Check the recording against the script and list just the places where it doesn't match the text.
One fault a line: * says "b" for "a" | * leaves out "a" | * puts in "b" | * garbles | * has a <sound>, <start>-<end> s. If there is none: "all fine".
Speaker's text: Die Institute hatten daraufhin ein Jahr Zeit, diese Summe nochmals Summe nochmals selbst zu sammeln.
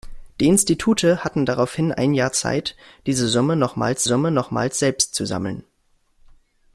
all fine